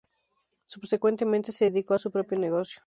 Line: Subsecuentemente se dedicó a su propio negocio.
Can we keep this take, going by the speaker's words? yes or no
yes